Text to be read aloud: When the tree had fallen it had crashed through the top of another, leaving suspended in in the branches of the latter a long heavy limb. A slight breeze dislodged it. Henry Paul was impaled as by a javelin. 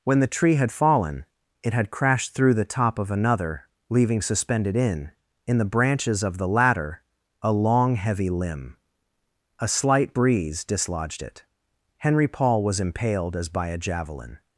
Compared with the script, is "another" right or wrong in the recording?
right